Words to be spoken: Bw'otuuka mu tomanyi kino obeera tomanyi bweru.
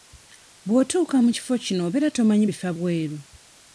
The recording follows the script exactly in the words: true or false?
false